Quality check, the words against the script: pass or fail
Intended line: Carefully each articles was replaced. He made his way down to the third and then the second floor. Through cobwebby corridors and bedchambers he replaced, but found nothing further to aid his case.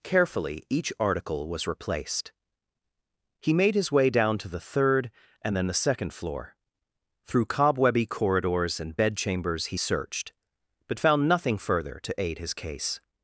fail